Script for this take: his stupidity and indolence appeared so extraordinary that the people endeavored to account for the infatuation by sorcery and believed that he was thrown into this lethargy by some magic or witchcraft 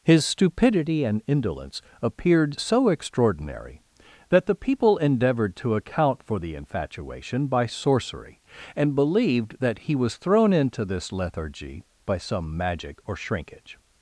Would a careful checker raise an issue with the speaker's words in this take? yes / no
yes